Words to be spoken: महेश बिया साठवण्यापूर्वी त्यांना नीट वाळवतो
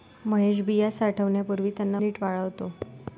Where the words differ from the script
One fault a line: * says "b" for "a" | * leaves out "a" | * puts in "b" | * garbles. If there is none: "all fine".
all fine